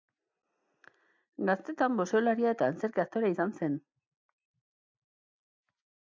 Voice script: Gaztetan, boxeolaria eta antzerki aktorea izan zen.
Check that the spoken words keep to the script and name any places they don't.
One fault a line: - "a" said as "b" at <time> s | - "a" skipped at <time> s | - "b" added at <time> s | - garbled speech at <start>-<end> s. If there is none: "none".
none